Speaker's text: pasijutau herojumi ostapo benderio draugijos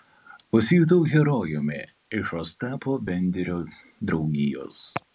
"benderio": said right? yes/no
yes